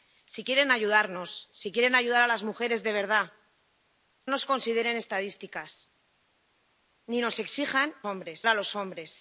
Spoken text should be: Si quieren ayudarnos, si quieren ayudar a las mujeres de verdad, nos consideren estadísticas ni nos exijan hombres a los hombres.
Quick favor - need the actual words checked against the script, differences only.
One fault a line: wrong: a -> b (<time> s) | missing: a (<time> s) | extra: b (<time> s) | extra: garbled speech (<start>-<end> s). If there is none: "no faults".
no faults